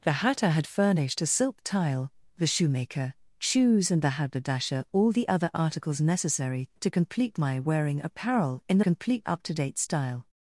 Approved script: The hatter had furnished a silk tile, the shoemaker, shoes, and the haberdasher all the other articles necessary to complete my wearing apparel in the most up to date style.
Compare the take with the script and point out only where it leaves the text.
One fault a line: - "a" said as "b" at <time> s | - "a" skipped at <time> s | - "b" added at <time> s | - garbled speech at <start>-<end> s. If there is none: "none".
- "most" said as "complete" at 8.8 s